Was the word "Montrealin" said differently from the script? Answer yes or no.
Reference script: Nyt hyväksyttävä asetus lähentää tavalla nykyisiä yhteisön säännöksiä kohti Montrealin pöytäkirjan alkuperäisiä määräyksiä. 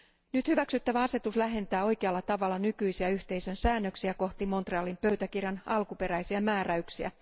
no